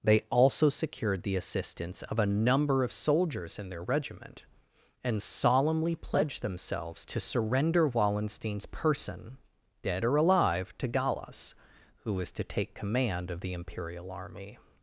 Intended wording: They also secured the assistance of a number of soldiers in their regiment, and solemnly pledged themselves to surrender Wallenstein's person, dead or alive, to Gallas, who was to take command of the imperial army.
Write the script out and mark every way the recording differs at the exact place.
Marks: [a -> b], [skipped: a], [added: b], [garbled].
They also secured the assistance of a number of soldiers in their regiment, and solemnly pledged themselves to surrender Wallenstein's person, dead or alive, to Gallas, who was to take command of the imperial army.